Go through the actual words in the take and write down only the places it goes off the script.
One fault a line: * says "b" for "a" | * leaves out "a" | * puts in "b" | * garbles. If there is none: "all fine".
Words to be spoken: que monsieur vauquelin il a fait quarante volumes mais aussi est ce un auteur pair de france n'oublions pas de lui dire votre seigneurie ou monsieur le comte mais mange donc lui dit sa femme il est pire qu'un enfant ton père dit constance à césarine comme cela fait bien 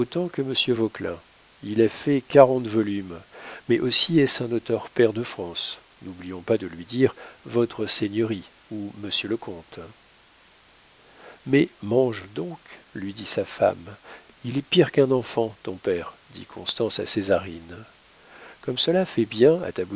all fine